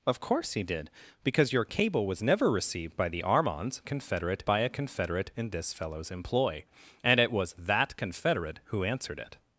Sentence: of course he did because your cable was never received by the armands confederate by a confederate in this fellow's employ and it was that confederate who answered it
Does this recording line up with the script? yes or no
yes